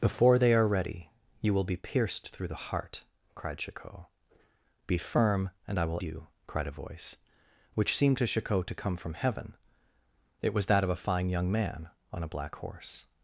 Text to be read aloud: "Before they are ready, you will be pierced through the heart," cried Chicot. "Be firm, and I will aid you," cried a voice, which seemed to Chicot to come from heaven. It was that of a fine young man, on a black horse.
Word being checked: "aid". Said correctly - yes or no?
no